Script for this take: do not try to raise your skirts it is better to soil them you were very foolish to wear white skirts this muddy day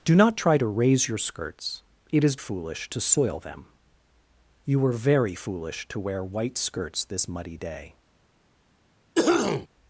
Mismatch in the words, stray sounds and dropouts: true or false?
true